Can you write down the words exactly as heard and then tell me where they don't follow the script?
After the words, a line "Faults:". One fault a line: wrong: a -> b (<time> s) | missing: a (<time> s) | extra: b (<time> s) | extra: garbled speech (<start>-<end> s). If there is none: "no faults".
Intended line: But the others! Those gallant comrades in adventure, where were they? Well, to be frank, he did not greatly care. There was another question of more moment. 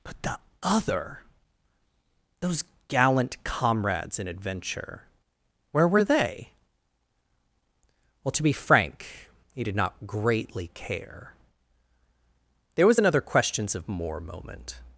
But the other! Those gallant comrades in adventure, where were they? Well, to be frank, he did not greatly care. There was another questions of more moment.
Faults:
wrong: others -> other (0.6 s)
wrong: question -> questions (13.2 s)